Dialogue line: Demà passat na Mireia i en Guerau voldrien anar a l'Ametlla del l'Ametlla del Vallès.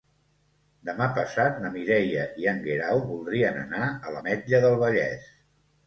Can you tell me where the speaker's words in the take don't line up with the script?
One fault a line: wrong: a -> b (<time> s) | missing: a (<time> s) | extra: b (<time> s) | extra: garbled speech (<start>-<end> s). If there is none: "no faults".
missing: l'Ametlla del (4.8 s)